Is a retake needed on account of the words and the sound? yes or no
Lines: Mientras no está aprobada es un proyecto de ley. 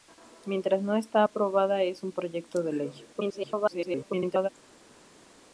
yes